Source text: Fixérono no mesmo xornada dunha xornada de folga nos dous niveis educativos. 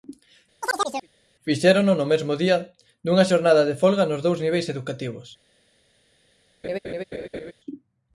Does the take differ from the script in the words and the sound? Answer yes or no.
yes